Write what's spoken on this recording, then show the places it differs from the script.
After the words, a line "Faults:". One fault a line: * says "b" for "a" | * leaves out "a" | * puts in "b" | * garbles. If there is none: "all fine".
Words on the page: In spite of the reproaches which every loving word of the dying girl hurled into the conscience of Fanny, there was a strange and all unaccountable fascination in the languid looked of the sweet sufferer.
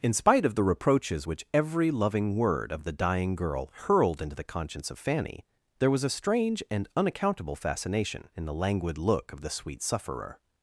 In spite of the reproaches which every loving word of the dying girl hurled into the conscience of Fanny, there was a strange and unaccountable fascination in the languid look of the sweet sufferer.
Faults:
* leaves out "all"
* says "look" for "looked"